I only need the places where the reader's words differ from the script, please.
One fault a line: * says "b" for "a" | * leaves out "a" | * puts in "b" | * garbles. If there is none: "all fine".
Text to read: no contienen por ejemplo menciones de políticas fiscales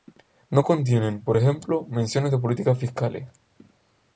all fine